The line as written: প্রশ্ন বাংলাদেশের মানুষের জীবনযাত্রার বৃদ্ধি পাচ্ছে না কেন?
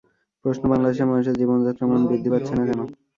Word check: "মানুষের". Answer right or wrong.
right